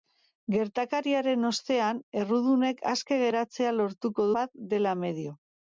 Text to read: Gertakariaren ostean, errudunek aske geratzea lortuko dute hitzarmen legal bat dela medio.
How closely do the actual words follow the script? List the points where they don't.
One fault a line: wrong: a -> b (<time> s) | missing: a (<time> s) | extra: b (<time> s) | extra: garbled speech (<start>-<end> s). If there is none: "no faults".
missing: dute hitzarmen legal (4.3 s)